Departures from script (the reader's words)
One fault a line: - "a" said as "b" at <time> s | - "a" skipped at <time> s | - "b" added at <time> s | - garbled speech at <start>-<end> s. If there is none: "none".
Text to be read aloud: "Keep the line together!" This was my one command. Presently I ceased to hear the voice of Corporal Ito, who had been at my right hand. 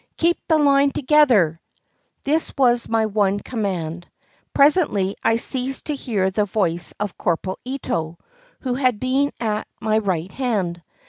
none